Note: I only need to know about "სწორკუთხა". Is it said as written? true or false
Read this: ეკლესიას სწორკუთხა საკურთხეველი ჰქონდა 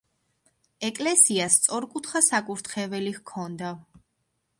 true